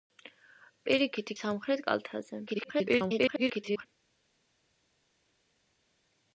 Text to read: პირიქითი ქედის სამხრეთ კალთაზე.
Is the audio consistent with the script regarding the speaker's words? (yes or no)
no